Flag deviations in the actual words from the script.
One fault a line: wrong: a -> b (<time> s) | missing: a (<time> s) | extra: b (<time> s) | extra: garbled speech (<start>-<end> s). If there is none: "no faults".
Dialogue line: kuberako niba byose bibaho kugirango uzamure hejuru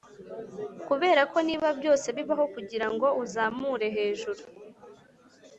no faults